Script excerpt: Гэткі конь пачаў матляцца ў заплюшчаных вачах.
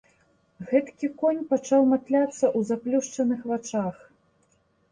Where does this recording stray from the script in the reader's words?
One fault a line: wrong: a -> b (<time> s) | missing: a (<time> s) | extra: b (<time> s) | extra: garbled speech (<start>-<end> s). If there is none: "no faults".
no faults